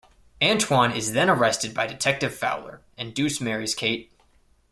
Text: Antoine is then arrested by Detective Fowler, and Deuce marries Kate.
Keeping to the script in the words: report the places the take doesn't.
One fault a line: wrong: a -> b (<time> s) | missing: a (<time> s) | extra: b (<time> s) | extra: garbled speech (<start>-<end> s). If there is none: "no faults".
no faults